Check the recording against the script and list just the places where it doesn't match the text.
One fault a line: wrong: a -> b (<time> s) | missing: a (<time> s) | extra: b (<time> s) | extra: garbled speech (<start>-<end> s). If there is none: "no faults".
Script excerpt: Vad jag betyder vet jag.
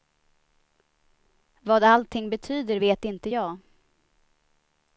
wrong: jag -> allting (1.8 s)
extra: inte (3.0 s)